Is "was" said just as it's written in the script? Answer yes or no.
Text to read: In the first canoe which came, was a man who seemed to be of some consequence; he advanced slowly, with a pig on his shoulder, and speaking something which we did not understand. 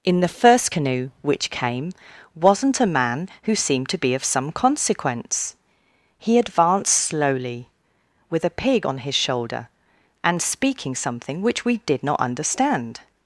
no